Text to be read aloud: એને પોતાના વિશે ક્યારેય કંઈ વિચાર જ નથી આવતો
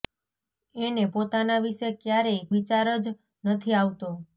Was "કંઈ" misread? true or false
true